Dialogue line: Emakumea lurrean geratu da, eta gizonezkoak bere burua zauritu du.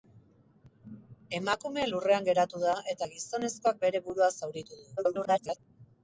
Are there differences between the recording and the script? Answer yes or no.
yes